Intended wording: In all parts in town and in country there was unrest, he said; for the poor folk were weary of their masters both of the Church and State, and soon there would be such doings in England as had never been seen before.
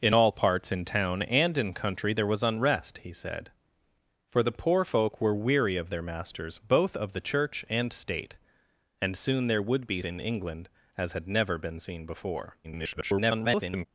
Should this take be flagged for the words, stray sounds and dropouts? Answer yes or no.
yes